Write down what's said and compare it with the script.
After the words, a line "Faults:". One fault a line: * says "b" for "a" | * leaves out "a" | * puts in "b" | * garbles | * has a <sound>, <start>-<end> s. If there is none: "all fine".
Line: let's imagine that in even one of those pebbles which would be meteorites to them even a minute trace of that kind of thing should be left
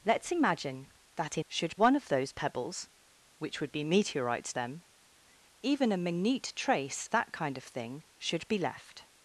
let's imagine that in should one of those pebbles which would be meteorites them even a minute trace that kind of thing should be left
Faults:
* says "should" for "even"
* leaves out "to"
* leaves out "of"